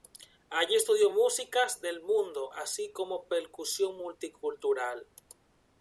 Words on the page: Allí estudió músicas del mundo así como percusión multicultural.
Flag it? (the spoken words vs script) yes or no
no